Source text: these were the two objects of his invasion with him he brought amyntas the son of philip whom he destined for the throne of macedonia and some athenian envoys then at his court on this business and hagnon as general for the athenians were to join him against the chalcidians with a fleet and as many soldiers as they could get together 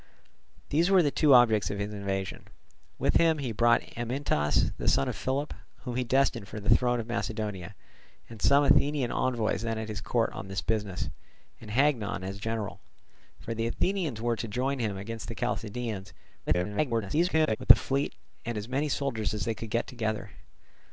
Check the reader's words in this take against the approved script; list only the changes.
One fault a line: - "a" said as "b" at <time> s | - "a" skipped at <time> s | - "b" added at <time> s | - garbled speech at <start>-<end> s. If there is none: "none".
- garbled speech at 16.5-17.6 s